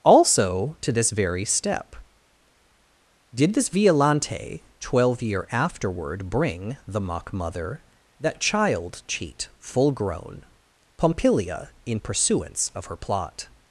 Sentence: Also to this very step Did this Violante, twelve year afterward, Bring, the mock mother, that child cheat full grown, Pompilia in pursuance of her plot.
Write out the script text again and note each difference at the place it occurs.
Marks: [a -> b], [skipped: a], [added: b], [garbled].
Also to this very step Did this Violante, twelve year afterward, Bring, the mock mother, that child cheat full grown, Pompilia in pursuance of her plot.